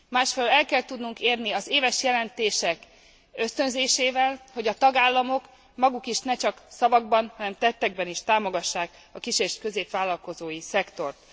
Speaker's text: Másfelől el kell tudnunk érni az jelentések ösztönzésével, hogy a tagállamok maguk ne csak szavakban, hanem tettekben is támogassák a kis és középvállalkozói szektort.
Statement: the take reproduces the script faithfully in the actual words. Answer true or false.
false